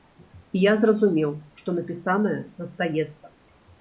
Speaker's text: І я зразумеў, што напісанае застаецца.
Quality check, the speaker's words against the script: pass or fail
pass